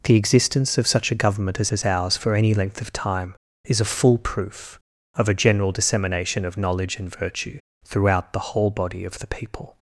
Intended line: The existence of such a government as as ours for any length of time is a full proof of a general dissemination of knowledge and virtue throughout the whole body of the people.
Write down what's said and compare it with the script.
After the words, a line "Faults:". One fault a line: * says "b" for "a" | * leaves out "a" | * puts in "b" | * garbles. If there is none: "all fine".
The existence of such a government as as ours for any length of time is a full proof of a general dissemination of knowledge and virtue throughout the whole body of the people.
Faults:
all fine